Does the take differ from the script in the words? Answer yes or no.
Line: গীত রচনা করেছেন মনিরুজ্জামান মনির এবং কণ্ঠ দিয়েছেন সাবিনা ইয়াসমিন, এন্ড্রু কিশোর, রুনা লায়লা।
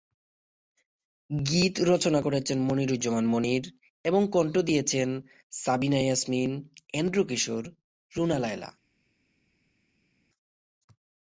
no